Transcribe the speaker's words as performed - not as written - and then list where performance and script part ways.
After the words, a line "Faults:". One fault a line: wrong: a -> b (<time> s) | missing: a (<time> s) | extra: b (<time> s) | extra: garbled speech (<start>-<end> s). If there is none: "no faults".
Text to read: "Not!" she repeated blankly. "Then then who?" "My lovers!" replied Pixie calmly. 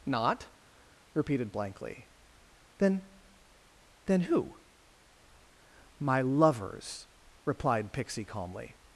"Not!" repeated blankly. "Then then who?" "My lovers!" replied Pixie calmly.
Faults:
missing: she (0.5 s)